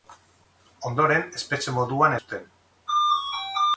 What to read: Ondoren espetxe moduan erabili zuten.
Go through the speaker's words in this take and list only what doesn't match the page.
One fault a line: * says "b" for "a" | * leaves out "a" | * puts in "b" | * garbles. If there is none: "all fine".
* leaves out "erabili"